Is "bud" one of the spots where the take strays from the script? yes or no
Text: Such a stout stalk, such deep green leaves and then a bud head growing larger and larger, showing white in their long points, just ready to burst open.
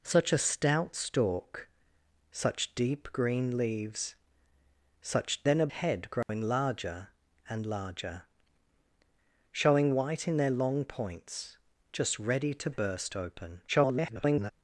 yes